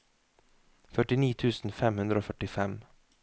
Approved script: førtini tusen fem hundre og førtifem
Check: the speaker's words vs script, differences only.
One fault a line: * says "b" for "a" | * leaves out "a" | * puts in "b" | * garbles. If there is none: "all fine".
all fine